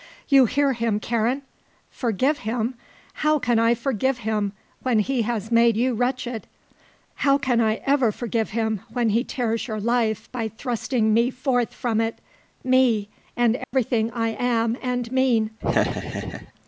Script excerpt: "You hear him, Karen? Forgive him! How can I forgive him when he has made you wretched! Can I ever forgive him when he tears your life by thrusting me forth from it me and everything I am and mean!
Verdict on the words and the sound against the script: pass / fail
fail